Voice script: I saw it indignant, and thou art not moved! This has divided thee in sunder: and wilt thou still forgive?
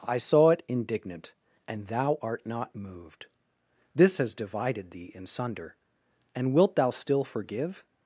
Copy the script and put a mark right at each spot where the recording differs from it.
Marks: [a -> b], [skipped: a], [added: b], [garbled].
I saw it indignant, and thou art not moved! This has divided thee in sunder: and wilt thou still forgive?